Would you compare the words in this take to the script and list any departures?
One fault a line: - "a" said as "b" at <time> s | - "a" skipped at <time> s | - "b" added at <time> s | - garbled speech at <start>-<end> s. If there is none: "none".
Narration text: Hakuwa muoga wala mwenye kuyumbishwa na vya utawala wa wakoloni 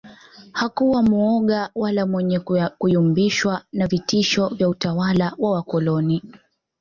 - "vitisho" added at 3.9 s